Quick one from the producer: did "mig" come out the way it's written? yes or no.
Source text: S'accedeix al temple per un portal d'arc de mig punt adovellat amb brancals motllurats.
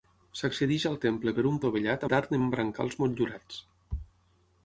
no